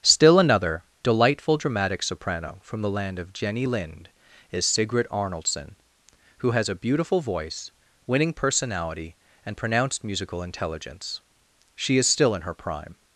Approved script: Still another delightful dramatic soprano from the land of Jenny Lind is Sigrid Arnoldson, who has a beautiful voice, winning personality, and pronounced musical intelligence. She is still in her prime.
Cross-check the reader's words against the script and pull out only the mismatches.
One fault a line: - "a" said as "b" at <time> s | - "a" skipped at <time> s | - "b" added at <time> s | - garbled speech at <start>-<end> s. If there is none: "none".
none